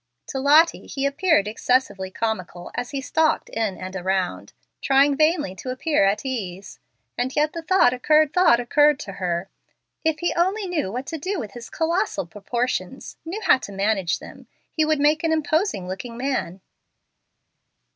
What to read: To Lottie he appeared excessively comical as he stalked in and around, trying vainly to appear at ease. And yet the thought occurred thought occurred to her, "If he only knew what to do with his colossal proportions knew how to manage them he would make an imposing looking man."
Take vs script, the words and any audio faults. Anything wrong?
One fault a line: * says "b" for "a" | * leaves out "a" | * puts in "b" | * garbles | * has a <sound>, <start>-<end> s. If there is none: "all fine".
all fine